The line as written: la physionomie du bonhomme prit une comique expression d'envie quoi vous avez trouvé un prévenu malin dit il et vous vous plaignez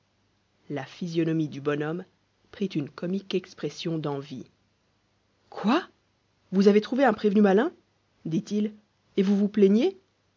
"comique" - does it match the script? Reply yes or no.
yes